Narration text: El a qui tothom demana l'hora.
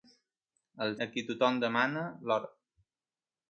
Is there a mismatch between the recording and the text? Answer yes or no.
no